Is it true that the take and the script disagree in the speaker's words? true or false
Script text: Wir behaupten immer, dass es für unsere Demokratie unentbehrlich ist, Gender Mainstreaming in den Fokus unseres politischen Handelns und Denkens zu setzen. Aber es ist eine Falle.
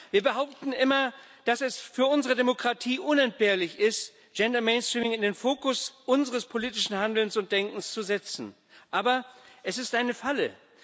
false